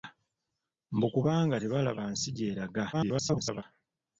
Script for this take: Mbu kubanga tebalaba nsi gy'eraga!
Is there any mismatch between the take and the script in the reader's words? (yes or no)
yes